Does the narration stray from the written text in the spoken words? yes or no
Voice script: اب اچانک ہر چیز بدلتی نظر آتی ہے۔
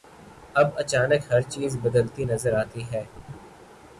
no